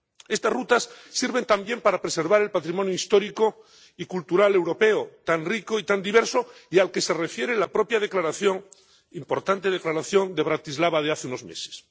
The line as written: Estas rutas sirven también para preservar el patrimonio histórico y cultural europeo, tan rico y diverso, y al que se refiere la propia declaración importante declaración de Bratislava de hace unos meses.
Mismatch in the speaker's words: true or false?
true